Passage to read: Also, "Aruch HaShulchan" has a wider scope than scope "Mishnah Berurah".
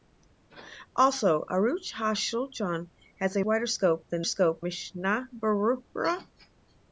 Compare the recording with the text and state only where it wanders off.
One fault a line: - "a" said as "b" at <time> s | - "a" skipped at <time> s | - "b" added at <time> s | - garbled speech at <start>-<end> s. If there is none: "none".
none